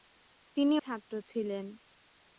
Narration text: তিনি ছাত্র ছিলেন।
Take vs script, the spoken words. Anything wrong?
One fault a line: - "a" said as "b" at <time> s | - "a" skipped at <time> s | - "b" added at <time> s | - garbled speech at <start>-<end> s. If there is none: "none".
none